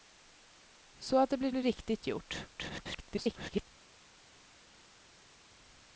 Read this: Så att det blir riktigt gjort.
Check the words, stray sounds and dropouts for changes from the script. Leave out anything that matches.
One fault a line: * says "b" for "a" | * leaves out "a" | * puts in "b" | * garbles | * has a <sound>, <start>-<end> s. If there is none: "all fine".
* puts in "blir"
* garbles